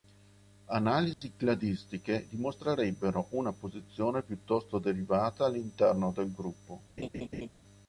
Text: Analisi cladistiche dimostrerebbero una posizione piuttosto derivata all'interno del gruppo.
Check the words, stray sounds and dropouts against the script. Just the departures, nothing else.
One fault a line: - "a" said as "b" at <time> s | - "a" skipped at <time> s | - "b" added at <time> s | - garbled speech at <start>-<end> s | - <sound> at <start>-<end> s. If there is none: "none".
- dropout at 1.1-1.2 s
- laugh at 7.0-7.5 s